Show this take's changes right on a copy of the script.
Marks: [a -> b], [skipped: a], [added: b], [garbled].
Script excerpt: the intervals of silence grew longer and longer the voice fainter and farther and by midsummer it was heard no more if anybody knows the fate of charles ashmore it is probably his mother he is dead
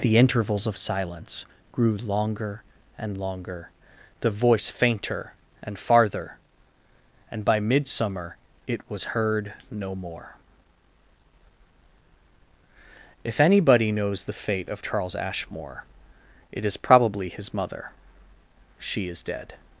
the intervals of silence grew longer and longer the voice fainter and farther and by midsummer it was heard no more if anybody knows the fate of charles ashmore it is probably his mother [he -> she] is dead